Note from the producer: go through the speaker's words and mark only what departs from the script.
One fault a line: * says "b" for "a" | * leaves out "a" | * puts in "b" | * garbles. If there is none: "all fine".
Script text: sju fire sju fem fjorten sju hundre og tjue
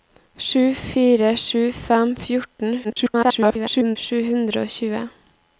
* garbles